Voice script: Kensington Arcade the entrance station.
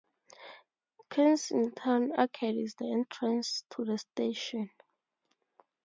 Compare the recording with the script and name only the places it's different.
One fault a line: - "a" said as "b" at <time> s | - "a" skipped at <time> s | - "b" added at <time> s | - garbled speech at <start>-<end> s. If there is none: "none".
- "is" added at 2.6 s
- "to the" added at 3.7 s